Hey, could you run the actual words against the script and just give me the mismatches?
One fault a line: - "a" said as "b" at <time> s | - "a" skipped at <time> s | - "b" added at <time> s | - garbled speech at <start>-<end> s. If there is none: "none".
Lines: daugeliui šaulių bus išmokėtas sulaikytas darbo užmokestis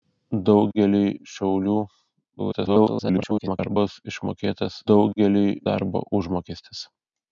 - garbled speech at 2.4-3.7 s
- "sulaikytas" said as "daugeliui" at 4.9 s